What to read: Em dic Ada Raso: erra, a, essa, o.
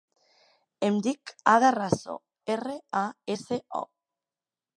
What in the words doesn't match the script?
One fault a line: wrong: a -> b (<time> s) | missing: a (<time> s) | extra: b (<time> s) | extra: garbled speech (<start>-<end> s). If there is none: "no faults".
no faults